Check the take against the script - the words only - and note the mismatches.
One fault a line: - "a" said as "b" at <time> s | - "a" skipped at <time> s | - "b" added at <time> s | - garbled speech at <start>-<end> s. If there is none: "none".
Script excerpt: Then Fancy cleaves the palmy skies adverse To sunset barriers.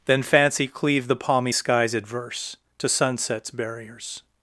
- "cleaves" said as "cleave" at 0.7 s
- "sunset" said as "sunsets" at 2.9 s